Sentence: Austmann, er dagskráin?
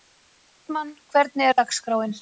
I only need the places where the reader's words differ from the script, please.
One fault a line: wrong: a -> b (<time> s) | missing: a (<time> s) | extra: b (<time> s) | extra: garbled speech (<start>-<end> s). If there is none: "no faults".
extra: hvernig (1.1 s)